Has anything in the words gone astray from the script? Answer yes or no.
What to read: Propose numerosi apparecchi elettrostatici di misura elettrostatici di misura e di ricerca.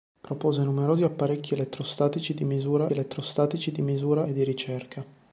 no